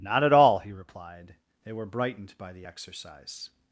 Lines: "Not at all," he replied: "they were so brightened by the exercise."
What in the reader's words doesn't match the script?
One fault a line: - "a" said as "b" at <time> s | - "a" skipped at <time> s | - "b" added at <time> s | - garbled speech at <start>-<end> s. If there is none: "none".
- "so" skipped at 1.8 s